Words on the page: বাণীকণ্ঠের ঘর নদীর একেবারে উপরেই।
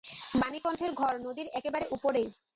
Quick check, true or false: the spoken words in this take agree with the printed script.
true